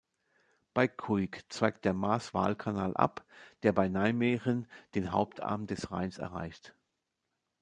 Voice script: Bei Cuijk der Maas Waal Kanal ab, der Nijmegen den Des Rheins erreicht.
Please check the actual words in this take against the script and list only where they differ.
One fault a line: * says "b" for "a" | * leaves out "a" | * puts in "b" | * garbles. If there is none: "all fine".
* puts in "zweigt"
* puts in "bei"
* puts in "Hauptarm"